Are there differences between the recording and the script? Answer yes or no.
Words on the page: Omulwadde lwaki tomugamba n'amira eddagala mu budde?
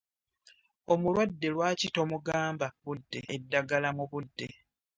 yes